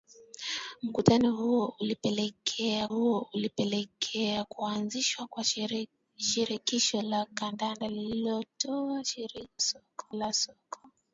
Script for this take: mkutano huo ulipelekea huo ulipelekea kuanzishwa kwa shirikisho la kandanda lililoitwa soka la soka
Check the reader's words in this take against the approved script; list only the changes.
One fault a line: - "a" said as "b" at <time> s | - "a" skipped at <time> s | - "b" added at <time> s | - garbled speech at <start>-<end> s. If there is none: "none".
none